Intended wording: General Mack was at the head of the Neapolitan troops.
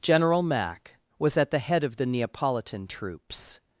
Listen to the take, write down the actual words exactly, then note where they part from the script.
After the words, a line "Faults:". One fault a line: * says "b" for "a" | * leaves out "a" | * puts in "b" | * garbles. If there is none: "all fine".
General Mack was at the head of the Neapolitan troops.
Faults:
all fine